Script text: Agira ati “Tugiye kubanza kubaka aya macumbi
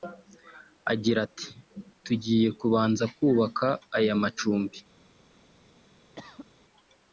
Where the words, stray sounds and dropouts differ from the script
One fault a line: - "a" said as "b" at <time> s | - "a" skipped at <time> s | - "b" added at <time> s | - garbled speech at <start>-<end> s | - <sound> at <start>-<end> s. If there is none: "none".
- cough at 6.2-6.5 s